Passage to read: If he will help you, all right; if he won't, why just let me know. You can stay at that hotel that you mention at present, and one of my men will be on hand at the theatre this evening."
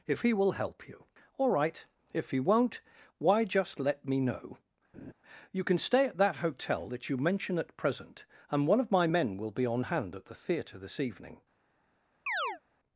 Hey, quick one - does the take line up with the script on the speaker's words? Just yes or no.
yes